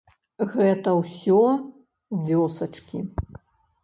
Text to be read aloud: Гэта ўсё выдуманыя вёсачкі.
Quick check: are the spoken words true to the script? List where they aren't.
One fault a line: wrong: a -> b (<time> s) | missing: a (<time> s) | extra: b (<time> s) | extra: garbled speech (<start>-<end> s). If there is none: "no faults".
missing: выдуманыя (1.4 s)